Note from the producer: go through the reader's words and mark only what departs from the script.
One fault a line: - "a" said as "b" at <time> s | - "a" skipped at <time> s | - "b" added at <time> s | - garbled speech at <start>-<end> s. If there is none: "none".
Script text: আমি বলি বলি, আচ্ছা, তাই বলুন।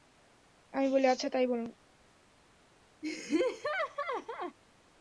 - "বলি" skipped at 1.1 s